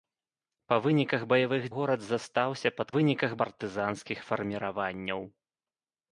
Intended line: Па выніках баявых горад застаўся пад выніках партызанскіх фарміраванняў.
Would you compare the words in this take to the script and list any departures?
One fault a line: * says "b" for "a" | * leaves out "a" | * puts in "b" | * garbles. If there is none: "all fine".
all fine